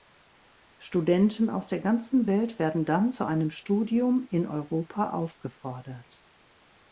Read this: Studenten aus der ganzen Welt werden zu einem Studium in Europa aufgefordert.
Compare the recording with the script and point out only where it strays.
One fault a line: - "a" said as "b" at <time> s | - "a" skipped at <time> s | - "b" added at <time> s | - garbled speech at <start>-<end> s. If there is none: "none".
- "dann" added at 2.9 s